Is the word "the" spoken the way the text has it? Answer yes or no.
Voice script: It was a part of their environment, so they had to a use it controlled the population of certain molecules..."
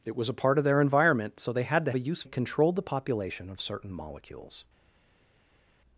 yes